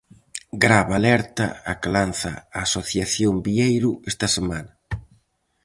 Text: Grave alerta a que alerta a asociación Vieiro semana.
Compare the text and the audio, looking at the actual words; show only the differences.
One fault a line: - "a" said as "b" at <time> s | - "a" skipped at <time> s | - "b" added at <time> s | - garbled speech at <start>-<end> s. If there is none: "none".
- "alerta" said as "lanza" at 1.9 s
- "esta" added at 4.1 s